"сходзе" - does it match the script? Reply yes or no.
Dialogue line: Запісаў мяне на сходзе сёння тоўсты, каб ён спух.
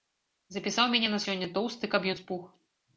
no